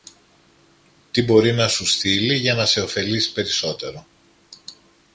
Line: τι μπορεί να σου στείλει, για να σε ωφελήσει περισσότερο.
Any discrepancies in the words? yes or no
no